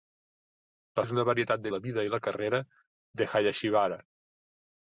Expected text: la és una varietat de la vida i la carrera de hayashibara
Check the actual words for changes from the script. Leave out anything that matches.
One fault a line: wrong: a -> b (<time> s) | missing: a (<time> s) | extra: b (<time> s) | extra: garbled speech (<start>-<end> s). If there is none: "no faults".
no faults